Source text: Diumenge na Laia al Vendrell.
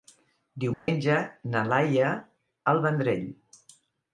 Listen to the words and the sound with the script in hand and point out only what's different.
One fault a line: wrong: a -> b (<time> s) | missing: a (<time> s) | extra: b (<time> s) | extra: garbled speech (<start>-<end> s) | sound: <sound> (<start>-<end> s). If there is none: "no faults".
sound: dropout (0.7-0.9 s)